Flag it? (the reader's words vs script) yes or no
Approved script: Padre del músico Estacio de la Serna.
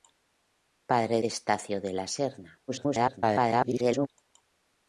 yes